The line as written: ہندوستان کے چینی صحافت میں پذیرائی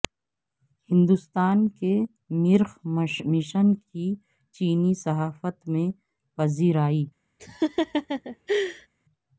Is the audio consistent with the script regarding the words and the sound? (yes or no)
no